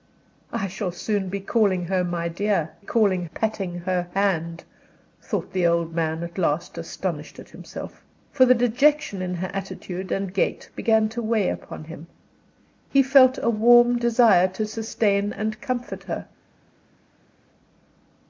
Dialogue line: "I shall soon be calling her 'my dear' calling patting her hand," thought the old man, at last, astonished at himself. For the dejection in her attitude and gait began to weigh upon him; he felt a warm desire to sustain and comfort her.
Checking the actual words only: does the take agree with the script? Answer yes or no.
yes